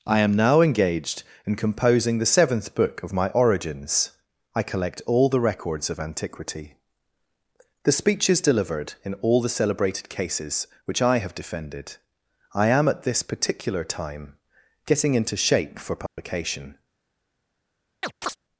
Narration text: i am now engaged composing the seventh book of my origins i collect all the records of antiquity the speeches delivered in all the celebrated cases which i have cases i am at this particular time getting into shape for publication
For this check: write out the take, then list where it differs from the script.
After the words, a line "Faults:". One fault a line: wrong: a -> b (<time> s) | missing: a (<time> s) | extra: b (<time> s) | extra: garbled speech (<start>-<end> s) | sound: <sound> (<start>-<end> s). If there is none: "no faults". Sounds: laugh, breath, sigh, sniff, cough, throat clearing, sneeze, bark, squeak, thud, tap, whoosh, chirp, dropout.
i am now engaged in composing the seventh book of my origins i collect all the records of antiquity the speeches delivered in all the celebrated cases which i have defended i am at this particular time getting into shape for publication
Faults:
extra: in (1.4 s)
wrong: cases -> defended (11.3 s)
sound: dropout (16.1-16.2 s)
sound: chirp (18.0-18.4 s)